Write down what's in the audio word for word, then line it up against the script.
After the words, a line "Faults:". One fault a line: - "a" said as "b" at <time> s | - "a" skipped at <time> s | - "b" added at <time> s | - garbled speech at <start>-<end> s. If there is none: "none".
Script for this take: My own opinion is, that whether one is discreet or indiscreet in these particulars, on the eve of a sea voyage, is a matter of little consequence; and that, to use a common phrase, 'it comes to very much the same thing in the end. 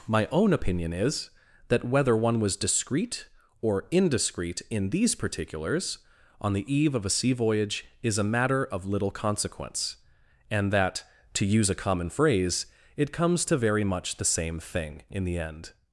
My own opinion is, that whether one was discreet or indiscreet in these particulars, on the eve of a sea voyage, is a matter of little consequence; and that, to use a common phrase, 'it comes to very much the same thing in the end.
Faults:
- "is" said as "was" at 2.4 s